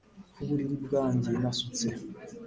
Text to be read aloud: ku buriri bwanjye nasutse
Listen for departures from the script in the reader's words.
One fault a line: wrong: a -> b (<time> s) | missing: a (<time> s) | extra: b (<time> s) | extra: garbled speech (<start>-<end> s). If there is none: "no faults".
no faults